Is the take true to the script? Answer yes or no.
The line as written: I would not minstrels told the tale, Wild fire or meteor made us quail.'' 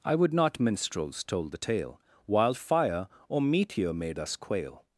yes